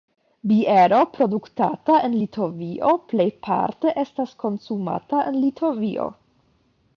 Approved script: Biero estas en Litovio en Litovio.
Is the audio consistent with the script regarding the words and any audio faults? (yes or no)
no